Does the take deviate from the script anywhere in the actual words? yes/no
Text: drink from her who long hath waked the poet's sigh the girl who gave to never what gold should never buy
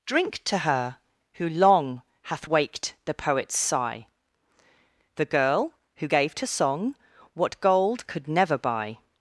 yes